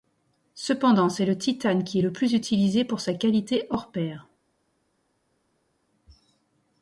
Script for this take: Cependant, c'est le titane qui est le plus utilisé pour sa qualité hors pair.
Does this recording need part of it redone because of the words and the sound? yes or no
no